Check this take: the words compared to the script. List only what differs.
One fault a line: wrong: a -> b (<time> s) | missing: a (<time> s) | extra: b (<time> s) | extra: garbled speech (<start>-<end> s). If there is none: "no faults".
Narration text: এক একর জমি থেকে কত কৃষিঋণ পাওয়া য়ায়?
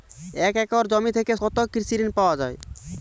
no faults